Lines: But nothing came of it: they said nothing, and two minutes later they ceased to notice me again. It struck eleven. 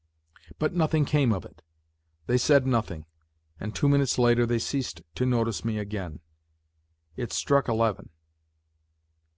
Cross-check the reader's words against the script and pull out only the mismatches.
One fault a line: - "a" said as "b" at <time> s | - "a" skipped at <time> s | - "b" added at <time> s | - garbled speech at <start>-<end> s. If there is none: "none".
none